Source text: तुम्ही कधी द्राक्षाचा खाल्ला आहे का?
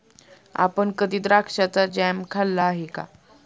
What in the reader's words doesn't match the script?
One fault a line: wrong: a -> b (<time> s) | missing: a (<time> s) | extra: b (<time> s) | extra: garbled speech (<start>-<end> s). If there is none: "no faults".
wrong: तुम्ही -> आपण (0.6 s)
extra: जॅम (1.9 s)